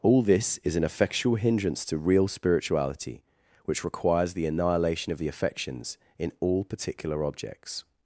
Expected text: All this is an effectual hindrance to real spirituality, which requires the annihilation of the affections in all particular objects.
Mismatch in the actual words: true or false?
false